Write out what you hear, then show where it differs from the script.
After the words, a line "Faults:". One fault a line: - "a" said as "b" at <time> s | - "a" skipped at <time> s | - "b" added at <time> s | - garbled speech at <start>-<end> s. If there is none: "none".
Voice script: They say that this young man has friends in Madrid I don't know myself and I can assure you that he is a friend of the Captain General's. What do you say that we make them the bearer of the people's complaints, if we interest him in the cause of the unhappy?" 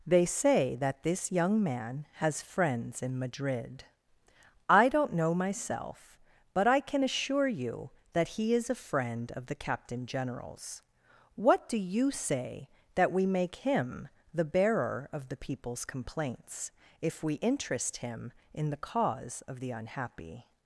They say that this young man has friends in Madrid I don't know myself but I can assure you that he is a friend of the Captain General's. What do you say that we make him the bearer of the people's complaints, if we interest him in the cause of the unhappy?"
Faults:
- "and" said as "but" at 6.5 s
- "them" said as "him" at 13.6 s